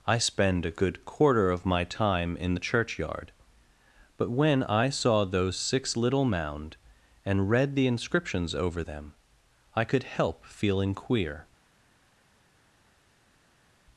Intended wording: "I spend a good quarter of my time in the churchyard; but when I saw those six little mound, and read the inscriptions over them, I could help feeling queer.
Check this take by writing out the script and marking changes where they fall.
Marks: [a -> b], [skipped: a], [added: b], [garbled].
"I spend a good quarter of my time in the churchyard; but when I saw those six little mound, and read the inscriptions over them, I could help feeling queer.